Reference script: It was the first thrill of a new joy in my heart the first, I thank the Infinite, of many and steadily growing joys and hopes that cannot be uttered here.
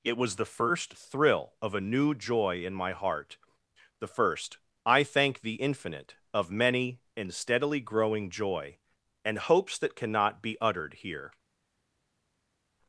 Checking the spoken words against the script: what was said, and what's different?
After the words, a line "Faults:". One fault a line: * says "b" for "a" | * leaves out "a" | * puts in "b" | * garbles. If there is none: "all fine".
It was the first thrill of a new joy in my heart the first, I thank the Infinite, of many and steadily growing joy and hopes that cannot be uttered here.
Faults:
* says "joy" for "joys"